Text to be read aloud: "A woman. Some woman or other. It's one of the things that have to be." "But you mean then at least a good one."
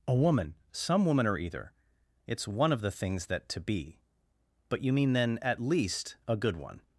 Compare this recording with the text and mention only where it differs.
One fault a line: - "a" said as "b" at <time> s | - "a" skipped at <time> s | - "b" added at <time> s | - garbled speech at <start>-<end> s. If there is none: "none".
- "other" said as "either" at 1.4 s
- "have" skipped at 3.5 s